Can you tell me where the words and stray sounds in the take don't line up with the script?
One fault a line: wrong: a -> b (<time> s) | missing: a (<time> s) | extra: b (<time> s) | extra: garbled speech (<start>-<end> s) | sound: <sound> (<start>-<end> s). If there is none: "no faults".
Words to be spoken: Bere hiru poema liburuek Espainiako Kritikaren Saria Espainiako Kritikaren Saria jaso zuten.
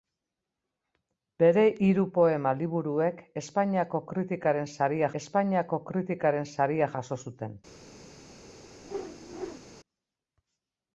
sound: whoosh (8.8-9.6 s)